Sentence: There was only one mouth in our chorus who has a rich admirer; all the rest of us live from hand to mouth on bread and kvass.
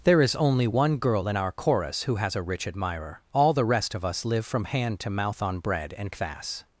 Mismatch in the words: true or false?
true